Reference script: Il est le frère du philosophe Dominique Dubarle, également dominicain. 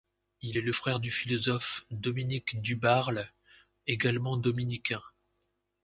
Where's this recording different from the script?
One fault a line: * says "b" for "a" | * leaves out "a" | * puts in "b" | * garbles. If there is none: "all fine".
all fine